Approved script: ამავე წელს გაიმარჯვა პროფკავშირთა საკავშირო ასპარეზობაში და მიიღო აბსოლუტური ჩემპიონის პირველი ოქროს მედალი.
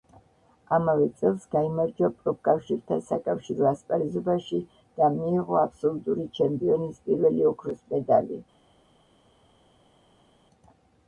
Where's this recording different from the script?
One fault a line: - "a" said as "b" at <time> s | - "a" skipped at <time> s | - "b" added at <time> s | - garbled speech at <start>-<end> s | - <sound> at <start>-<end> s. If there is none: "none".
none